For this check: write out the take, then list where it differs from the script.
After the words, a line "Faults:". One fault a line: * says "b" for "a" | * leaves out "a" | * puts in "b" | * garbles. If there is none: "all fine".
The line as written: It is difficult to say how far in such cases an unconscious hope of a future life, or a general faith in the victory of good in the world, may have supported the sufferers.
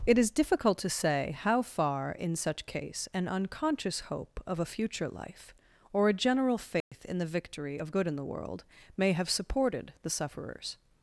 It is difficult to say how far in such case an unconscious hope of a future life, or a general faith in the victory of good in the world, may have supported the sufferers.
Faults:
* says "case" for "cases"